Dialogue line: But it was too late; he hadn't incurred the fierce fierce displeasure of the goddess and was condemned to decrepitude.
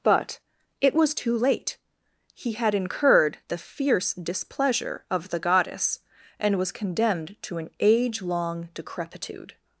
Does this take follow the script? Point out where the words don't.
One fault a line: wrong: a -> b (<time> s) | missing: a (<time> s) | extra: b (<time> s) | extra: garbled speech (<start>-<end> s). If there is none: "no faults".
wrong: hadn't -> had (2.5 s)
missing: fierce (4.1 s)
extra: an age long (7.6 s)